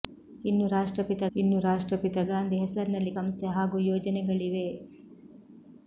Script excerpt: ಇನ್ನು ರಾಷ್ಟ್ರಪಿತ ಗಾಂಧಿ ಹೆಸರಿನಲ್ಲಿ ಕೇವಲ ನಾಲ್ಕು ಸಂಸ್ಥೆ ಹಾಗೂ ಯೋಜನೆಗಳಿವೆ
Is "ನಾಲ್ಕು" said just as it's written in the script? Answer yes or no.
no